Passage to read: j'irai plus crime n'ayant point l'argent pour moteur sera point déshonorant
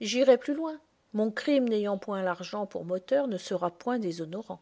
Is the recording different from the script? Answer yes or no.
yes